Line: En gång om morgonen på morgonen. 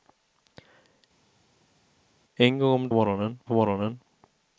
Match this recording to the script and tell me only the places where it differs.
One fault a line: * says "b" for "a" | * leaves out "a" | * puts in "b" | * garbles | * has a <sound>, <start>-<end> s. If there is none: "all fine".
all fine